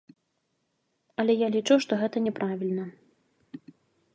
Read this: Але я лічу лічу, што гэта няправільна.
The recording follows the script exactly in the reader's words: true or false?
false